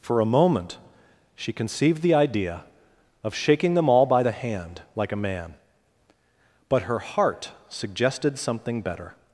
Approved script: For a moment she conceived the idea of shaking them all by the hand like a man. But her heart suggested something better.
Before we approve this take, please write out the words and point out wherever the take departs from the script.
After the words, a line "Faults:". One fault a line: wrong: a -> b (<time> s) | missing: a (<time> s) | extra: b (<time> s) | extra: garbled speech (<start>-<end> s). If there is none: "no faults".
For a moment she conceived the idea of shaking them all by the hand like a man. But her heart suggested something better.
Faults:
no faults